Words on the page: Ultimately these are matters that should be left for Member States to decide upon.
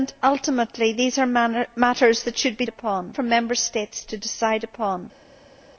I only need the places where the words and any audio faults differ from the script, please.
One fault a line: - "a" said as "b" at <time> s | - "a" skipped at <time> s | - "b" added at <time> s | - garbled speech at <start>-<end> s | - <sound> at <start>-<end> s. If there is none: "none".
- "left" said as "upon" at 2.7 s